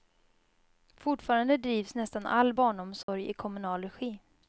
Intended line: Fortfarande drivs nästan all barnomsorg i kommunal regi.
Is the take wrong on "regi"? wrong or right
right